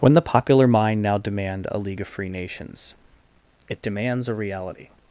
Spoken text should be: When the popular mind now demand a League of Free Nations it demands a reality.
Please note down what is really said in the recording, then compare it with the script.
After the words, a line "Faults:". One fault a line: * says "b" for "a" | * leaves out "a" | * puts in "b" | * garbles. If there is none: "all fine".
When the popular mind now demand a League of Free Nations it demands a reality.
Faults:
all fine